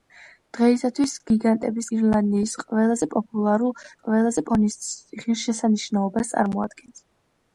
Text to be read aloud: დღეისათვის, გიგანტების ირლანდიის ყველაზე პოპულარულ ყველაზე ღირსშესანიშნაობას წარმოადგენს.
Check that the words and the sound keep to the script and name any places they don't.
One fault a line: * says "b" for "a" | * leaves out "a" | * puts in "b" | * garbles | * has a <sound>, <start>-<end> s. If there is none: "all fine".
all fine